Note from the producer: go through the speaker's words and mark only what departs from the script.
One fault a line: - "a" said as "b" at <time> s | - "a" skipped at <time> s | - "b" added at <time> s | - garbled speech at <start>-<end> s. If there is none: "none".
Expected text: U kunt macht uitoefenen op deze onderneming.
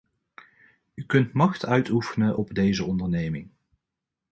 none